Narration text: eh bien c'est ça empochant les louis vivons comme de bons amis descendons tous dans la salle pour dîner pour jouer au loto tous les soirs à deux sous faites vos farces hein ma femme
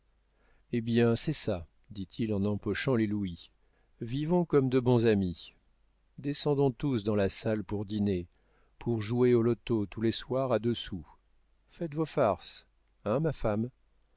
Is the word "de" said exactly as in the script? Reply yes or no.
yes